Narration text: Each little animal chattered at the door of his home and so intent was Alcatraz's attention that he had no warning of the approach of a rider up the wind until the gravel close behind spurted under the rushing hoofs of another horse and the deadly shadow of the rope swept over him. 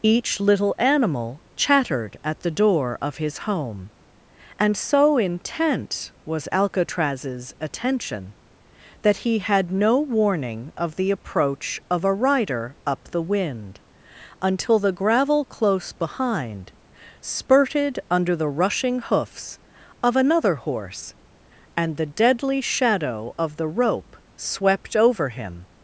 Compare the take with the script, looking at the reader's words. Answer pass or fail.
pass